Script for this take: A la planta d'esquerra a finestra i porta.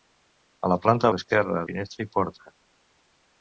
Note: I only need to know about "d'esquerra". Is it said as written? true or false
true